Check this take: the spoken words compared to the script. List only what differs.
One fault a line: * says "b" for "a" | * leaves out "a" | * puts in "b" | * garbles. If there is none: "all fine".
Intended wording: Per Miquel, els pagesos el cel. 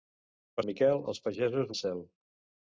all fine